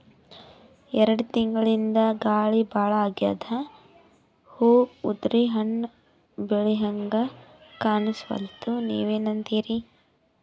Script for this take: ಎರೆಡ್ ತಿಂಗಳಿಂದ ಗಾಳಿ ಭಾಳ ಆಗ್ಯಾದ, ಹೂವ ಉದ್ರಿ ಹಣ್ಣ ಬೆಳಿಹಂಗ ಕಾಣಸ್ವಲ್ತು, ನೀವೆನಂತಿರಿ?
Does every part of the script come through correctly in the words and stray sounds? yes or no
yes